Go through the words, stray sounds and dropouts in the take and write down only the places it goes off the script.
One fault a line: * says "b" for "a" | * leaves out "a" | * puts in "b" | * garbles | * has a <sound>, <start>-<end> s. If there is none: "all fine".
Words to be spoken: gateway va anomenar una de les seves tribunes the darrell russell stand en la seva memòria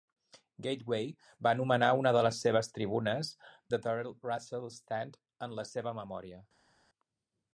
all fine